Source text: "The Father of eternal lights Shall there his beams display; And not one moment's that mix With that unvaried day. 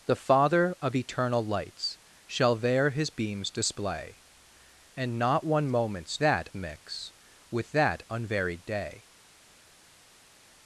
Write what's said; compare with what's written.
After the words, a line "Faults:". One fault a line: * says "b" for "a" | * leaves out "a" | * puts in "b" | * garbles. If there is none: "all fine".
"The Father of eternal lights Shall there his beams display; And not one moment's that mix With that unvaried day.
Faults:
all fine